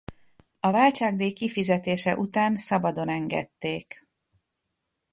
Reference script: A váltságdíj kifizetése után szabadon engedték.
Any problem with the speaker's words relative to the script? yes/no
no